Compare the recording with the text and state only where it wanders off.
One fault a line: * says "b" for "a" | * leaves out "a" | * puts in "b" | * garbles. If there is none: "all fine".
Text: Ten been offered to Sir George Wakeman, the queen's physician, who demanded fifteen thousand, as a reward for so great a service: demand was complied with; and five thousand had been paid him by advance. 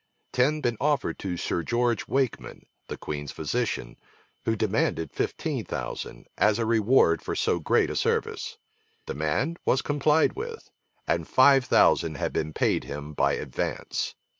all fine